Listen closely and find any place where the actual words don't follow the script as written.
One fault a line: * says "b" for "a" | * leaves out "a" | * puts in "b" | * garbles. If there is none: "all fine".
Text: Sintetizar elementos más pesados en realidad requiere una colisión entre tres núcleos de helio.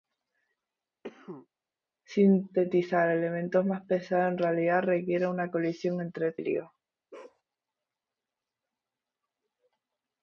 * leaves out "tres núcleos de"